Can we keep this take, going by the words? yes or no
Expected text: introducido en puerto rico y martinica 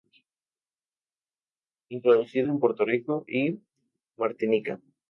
yes